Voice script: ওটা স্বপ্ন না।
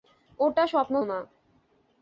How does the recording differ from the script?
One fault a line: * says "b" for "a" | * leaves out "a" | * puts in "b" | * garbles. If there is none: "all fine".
all fine